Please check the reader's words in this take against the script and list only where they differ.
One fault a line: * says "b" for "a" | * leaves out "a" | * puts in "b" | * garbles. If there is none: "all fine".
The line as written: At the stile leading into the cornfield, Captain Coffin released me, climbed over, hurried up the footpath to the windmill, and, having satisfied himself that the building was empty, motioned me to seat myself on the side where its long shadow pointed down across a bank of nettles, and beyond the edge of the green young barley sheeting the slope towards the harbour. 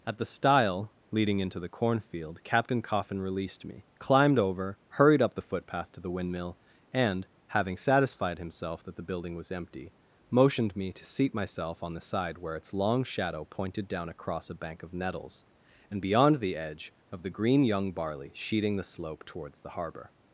all fine